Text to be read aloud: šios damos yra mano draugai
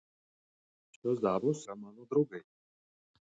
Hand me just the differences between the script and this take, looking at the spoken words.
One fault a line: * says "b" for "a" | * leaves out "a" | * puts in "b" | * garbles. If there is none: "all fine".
all fine